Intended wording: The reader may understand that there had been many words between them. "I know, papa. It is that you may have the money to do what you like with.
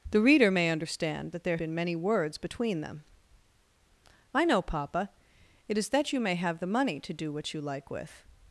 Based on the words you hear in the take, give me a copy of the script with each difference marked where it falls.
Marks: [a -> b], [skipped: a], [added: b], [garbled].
The reader may understand that there [skipped: had] been many words between them. "I know, papa. It is that you may have the money to do what you like with.